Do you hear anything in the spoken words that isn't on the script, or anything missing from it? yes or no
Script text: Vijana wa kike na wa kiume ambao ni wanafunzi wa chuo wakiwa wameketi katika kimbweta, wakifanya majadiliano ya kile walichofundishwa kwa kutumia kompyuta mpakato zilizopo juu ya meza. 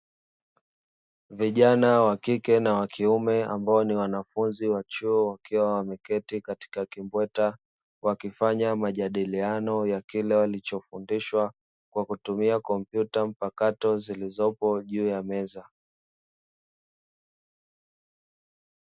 no